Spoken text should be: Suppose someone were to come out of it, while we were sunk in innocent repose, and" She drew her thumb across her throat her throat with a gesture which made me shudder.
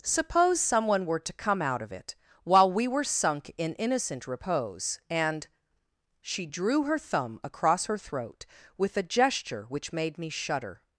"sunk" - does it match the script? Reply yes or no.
yes